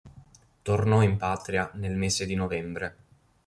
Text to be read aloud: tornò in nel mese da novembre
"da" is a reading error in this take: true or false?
true